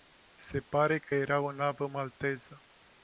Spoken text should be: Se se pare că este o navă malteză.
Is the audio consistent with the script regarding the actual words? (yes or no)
no